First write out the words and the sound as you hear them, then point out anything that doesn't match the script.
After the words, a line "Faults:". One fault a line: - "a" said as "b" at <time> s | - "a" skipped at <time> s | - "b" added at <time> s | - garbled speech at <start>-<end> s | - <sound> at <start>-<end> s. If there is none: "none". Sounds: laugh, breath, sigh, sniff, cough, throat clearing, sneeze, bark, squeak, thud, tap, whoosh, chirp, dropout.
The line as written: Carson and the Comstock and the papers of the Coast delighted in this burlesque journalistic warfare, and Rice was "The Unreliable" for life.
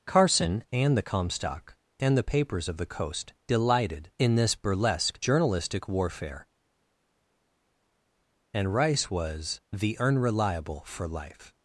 Carson and the Comstock and the papers of the Coast delighted in this burlesque journalistic warfare, and Rice was "The Unreliable" for life.
Faults:
none